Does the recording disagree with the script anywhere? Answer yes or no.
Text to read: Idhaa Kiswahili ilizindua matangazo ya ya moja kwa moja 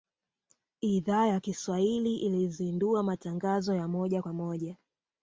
yes